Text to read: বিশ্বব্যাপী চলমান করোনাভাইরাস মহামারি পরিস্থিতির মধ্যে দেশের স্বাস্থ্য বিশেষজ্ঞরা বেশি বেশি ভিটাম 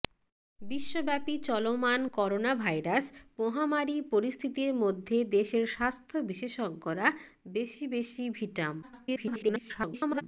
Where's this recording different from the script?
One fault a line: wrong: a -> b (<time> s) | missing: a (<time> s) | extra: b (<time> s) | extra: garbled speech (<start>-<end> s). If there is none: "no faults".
extra: garbled speech (8.8-10.2 s)